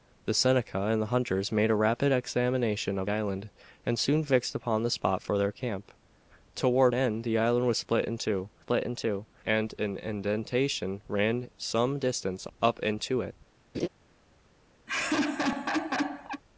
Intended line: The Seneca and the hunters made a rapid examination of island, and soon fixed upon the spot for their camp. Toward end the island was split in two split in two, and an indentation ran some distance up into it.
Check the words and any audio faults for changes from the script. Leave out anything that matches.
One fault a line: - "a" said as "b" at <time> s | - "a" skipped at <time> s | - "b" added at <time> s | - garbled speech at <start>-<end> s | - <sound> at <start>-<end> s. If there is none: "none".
- laugh at 13.7-13.9 s
- laugh at 14.9-16.4 s